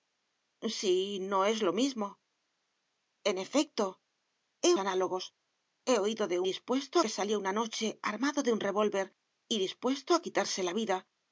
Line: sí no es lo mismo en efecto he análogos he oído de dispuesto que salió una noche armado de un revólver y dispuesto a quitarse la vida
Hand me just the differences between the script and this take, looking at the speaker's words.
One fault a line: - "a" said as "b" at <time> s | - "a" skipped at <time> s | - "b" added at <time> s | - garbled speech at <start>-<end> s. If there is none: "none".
none